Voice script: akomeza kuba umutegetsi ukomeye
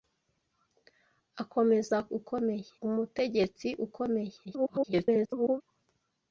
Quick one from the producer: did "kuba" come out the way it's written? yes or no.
no